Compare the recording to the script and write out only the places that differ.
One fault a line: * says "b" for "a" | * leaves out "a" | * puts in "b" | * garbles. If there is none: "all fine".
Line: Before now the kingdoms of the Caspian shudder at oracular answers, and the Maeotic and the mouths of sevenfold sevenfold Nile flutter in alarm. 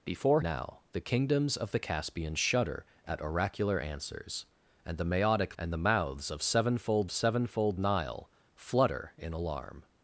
all fine